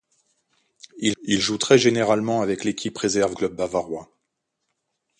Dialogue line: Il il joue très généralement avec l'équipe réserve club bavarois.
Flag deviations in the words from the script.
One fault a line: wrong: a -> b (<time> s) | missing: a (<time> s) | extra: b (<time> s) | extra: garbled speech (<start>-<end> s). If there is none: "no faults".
no faults